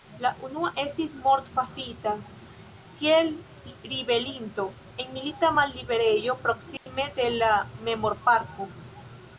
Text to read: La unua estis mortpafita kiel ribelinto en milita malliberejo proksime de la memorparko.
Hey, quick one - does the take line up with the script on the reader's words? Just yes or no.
yes